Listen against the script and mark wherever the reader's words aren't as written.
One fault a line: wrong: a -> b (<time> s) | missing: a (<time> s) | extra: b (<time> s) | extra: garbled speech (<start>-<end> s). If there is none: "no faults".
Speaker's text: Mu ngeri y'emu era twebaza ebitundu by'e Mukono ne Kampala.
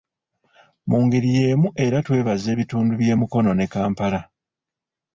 no faults